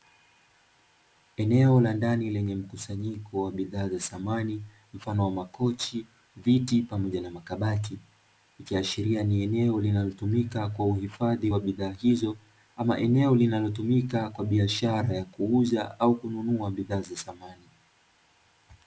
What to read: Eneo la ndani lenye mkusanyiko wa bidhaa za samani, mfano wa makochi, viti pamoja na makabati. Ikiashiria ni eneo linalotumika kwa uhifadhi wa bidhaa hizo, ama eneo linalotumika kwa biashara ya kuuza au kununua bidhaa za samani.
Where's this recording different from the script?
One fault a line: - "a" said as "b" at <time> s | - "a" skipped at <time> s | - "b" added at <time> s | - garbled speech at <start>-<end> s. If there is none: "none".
none